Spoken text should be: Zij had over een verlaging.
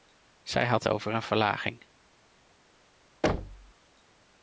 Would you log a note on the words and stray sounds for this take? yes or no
yes